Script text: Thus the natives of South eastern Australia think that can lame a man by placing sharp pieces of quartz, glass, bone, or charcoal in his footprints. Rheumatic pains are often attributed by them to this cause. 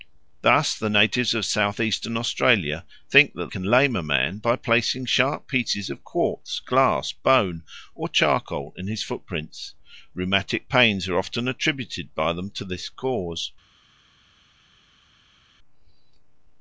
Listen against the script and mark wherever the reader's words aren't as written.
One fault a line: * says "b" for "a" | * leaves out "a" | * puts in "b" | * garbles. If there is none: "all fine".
all fine